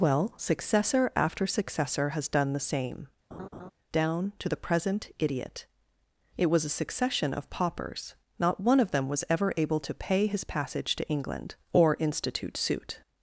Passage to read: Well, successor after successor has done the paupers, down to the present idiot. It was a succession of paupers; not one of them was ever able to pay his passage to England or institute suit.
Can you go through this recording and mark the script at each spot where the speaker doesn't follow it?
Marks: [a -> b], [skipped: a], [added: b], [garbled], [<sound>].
Well, successor after successor has done the [paupers, -> same] [laugh] down to the present idiot. It was a succession of paupers; not one of them was ever able to pay his passage to England or institute suit.